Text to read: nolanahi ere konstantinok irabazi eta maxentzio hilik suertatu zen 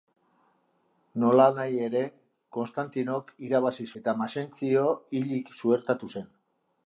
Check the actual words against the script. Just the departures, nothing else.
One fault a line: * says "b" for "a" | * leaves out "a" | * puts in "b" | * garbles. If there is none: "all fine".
all fine